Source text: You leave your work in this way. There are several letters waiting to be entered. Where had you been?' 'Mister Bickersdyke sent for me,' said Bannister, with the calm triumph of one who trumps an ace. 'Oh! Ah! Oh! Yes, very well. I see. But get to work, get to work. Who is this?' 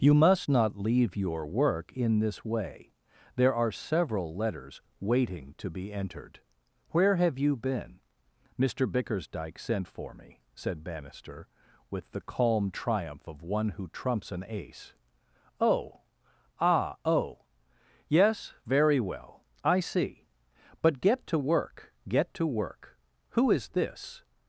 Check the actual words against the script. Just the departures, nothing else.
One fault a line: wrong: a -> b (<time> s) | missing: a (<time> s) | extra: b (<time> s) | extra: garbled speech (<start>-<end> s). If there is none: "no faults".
extra: must not (0.1 s)
wrong: had -> have (7.2 s)